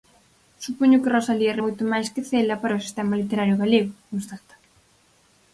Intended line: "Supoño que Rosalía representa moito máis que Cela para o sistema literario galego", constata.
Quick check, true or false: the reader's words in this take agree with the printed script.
false